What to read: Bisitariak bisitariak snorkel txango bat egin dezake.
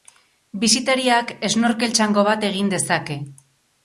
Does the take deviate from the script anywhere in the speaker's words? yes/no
yes